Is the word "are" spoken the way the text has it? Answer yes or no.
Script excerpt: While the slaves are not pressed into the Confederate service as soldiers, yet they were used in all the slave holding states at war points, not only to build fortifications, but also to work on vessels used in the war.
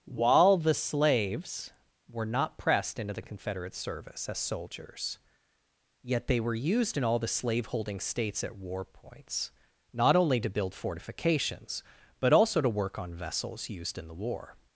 no